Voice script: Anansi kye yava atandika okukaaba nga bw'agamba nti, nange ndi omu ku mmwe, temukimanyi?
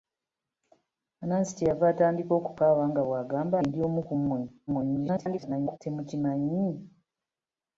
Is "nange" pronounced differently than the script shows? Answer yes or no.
yes